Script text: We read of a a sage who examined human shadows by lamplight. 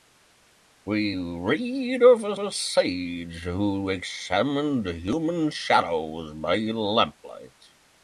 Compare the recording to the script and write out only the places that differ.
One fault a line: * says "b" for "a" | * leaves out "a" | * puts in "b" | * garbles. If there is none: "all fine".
all fine